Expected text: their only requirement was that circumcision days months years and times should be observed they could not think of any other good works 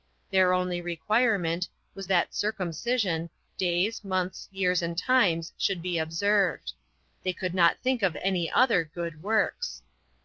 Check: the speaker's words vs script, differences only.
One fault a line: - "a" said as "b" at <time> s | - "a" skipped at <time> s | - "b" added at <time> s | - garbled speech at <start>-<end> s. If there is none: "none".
none